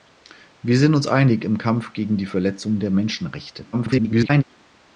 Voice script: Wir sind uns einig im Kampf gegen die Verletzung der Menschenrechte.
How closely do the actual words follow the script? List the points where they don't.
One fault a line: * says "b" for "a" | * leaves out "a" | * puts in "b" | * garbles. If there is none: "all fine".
* garbles